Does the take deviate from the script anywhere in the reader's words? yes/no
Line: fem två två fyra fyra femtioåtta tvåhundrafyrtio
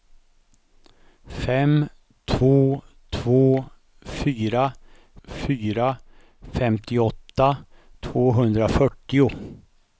no